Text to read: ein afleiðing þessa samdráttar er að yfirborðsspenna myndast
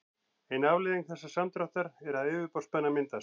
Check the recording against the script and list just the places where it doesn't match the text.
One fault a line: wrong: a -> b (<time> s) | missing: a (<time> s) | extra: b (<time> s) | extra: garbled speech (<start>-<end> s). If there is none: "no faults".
no faults